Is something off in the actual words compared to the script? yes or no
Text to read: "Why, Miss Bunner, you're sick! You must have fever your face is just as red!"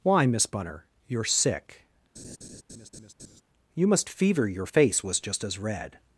yes